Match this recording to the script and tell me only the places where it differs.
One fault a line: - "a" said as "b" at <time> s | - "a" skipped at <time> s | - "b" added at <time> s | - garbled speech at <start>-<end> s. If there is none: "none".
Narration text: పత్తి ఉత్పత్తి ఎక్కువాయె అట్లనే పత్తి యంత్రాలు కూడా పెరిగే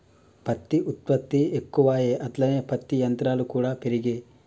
none